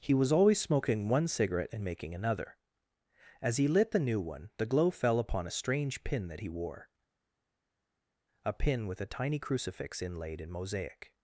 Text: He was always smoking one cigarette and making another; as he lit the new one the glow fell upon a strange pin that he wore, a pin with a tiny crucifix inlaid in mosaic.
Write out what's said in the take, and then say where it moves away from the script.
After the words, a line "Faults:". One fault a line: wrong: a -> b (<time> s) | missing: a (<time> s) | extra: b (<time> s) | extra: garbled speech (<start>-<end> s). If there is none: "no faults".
He was always smoking one cigarette and making another; as he lit the new one the glow fell upon a strange pin that he wore, a pin with a tiny crucifix inlaid in mosaic.
Faults:
no faults